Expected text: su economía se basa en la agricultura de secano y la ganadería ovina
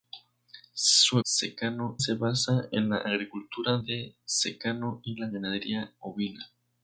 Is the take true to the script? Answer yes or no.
no